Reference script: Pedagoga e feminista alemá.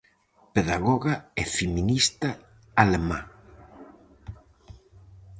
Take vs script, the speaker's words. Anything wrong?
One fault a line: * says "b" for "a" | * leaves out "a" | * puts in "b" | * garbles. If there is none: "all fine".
all fine